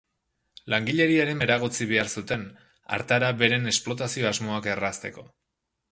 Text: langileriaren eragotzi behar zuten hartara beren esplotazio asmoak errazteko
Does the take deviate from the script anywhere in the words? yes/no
no